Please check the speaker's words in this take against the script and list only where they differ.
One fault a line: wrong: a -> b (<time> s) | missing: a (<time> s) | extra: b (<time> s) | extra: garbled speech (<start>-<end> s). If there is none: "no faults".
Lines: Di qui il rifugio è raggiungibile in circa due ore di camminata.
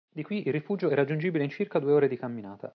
no faults